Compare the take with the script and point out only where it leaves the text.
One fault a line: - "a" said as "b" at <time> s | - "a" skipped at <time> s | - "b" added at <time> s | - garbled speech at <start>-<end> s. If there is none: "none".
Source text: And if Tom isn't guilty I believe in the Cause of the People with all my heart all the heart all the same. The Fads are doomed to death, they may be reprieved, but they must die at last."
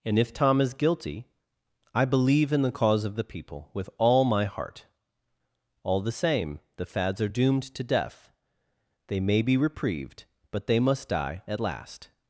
- "isn't" said as "is" at 0.6 s
- "heart all the" skipped at 6.1 s